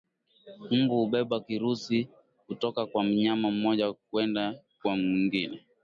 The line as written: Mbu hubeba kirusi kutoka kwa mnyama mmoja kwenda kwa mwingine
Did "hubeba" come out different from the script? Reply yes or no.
no